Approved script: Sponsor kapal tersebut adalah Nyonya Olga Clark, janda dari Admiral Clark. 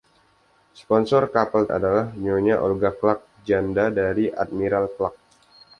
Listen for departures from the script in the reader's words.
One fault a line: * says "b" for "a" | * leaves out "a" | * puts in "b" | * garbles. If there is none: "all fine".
* leaves out "tersebut"